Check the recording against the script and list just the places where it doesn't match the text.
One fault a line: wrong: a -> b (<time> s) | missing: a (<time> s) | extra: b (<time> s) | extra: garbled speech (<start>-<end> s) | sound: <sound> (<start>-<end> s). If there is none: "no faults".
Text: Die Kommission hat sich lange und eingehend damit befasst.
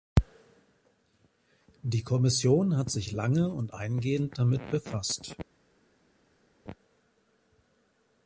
no faults